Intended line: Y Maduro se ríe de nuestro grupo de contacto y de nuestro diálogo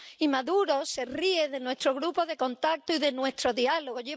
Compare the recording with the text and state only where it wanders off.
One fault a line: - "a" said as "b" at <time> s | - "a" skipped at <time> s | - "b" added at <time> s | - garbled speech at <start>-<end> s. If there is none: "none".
none